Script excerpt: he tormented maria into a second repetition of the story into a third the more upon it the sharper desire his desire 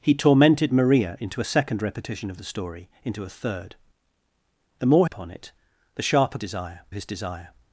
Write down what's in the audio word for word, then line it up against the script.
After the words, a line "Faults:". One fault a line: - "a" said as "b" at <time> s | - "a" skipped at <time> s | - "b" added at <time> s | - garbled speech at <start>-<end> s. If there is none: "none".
he tormented maria into a second repetition of the story into a third the more upon it the sharper desire his desire
Faults:
none